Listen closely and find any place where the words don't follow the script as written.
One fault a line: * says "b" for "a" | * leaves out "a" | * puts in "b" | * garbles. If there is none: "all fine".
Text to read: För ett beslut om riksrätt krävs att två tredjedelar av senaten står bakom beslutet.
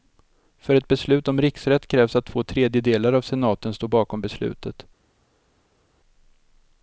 all fine